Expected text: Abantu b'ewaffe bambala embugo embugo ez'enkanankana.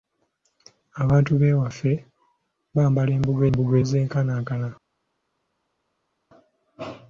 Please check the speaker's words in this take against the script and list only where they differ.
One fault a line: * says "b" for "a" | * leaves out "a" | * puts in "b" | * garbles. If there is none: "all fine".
all fine